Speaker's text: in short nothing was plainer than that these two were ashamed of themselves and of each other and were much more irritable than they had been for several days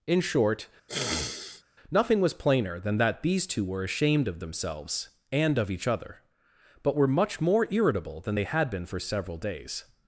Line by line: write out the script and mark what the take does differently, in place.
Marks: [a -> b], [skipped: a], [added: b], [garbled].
in short nothing was plainer than that these two were ashamed of themselves and of each other [and -> but] were much more irritable than they had been for several days